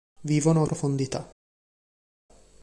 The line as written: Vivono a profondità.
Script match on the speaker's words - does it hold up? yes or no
yes